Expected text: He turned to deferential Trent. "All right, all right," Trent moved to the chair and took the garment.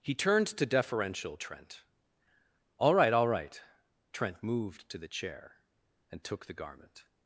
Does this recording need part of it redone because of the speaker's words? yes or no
no